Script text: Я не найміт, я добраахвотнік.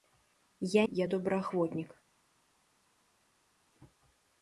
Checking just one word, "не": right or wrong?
wrong